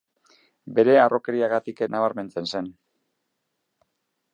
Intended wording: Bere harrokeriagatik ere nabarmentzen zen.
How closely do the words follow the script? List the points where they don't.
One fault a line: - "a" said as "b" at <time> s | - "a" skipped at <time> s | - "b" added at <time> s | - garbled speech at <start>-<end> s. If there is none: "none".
- "ere" skipped at 1.8 s